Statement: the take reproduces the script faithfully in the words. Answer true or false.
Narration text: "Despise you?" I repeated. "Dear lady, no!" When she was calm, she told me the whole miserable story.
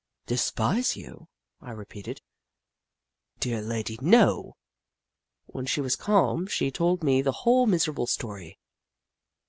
true